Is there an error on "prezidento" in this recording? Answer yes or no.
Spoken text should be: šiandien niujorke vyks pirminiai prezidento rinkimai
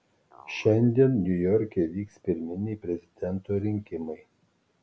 no